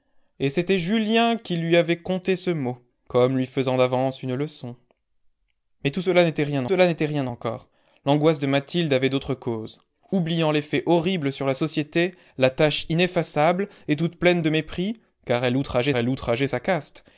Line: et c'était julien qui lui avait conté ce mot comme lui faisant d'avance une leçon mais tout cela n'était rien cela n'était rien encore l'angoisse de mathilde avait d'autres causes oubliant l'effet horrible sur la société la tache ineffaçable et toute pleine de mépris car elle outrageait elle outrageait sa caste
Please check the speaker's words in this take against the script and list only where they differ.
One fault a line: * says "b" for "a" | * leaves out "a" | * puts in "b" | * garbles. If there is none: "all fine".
all fine